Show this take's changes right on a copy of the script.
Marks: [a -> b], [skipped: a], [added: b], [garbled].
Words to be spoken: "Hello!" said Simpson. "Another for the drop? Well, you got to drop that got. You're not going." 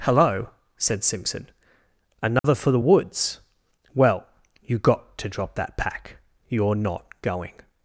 "Hello!" said Simpson. "Another for the [drop? -> woods] Well, you got to drop that [got. -> pack] You're not going."